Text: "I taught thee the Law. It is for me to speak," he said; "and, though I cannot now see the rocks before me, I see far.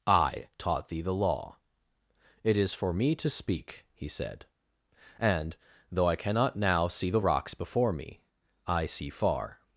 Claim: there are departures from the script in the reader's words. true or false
false